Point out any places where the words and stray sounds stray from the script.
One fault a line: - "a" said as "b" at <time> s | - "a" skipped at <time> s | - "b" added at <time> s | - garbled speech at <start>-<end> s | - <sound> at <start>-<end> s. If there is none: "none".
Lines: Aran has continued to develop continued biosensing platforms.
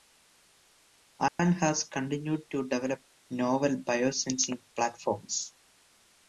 - dropout at 1.3-1.4 s
- "continued" said as "novel" at 3.3 s